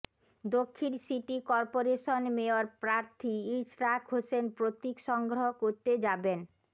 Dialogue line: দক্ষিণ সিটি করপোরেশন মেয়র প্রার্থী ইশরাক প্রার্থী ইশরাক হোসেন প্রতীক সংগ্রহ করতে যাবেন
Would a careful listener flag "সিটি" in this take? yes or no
no